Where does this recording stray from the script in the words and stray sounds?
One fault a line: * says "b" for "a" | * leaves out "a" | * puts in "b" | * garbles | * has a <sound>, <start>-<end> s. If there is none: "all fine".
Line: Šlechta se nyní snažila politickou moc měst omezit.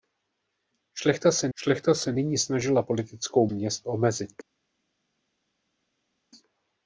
* puts in "šlechta se"
* leaves out "moc"